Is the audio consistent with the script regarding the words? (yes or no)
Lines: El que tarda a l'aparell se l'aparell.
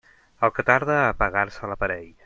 no